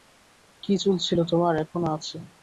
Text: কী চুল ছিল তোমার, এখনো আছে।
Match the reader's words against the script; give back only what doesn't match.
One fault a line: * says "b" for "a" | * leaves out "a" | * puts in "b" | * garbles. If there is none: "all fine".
all fine